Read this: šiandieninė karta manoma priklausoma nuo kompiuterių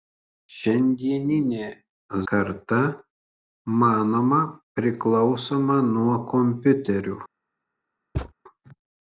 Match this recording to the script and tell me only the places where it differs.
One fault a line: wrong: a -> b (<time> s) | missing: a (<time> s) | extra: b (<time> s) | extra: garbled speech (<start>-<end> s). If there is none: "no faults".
no faults